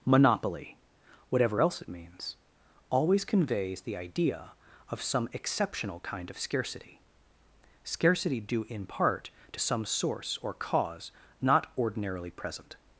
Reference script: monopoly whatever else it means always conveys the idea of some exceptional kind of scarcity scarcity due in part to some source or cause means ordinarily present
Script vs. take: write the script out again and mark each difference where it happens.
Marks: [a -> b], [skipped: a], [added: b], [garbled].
monopoly whatever else it means always conveys the idea of some exceptional kind of scarcity scarcity due in part to some source or cause [means -> not] ordinarily present